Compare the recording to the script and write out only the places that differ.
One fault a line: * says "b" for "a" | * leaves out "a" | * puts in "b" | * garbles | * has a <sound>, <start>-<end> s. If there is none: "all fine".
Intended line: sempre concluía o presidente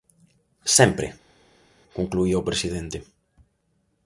all fine